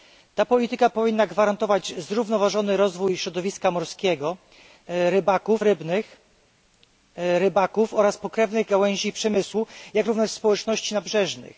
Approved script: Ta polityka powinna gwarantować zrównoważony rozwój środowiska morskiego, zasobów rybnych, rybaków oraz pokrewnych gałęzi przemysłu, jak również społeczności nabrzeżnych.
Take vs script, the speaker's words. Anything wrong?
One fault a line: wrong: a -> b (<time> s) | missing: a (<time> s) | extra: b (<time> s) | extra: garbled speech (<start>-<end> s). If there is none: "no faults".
wrong: zasobów -> rybaków (4.9 s)